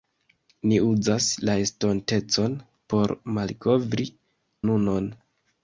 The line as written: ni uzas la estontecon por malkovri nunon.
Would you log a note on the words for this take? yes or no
no